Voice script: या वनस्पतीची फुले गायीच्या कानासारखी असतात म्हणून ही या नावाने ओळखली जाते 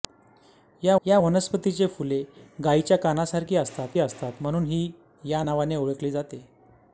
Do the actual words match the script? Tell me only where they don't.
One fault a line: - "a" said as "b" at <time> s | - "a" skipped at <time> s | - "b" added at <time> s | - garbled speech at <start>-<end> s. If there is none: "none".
- "या" added at 1.1 s
- "असतात" added at 4.0 s